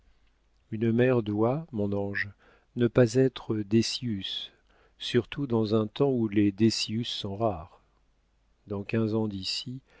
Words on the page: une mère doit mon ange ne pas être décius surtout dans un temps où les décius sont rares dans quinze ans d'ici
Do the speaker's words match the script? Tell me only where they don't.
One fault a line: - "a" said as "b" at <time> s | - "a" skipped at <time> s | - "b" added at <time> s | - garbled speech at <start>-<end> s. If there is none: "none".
none